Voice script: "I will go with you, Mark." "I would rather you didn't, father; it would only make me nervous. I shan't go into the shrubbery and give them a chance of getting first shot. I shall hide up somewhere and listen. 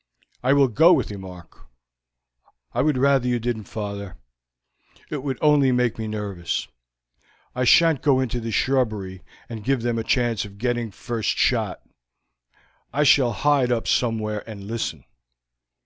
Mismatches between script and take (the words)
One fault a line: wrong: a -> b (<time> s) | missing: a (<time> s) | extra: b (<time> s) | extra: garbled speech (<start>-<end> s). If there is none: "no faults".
no faults